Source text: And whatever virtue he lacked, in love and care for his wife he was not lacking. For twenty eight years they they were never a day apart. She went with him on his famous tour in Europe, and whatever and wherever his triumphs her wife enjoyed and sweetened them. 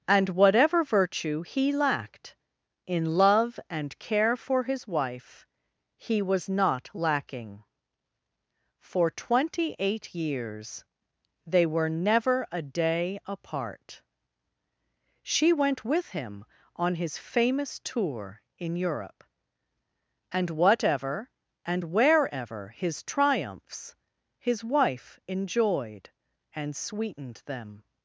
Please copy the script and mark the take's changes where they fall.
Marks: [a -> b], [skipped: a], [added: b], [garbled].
And whatever virtue he lacked, in love and care for his wife he was not lacking. For twenty eight years they [skipped: they] were never a day apart. She went with him on his famous tour in Europe, and whatever and wherever his triumphs [her -> his] wife enjoyed and sweetened them.